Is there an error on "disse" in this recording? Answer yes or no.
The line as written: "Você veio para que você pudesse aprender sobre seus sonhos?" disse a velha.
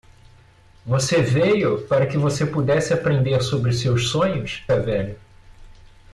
yes